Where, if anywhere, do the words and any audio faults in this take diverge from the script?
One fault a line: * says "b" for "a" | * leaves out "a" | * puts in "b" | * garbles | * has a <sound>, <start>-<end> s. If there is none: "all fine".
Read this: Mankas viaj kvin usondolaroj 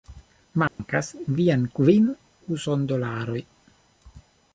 * has a dropout, 0.7-0.8 s